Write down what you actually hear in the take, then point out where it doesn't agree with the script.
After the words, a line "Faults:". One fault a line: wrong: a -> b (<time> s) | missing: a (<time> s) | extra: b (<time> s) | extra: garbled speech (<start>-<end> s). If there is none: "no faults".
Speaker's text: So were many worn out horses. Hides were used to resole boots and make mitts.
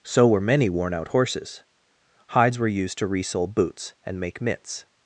So were many worn out horses. Hides were used to resole boots and make mitts.
Faults:
no faults